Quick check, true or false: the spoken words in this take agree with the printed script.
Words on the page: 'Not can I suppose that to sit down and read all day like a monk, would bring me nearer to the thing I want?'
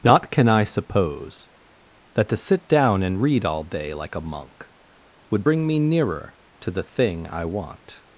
true